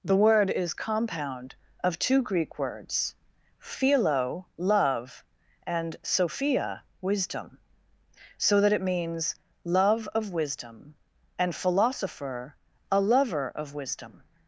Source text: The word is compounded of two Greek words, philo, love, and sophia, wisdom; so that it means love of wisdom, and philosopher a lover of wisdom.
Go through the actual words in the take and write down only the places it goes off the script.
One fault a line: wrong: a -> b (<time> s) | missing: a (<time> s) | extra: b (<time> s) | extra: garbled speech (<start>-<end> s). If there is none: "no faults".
wrong: compounded -> compound (0.7 s)